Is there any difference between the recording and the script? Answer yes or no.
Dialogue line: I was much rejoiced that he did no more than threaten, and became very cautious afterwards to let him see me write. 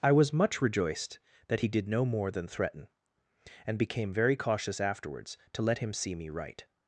no